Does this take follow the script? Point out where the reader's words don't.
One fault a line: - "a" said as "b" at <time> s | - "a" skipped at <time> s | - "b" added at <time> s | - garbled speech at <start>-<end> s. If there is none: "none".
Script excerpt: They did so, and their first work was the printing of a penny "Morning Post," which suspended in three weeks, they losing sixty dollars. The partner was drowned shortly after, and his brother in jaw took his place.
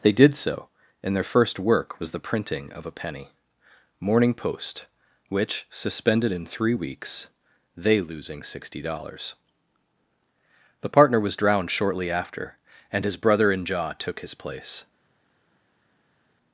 none